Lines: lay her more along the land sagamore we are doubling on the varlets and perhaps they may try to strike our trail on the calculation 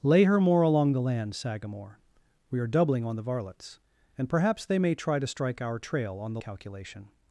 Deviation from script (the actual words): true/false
false